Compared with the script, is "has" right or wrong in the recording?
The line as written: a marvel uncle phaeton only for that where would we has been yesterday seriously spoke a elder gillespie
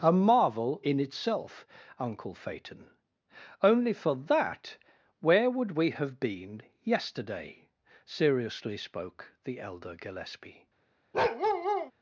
wrong